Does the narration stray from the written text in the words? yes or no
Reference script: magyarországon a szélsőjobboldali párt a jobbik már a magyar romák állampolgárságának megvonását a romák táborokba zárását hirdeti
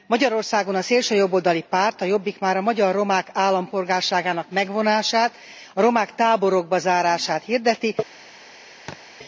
no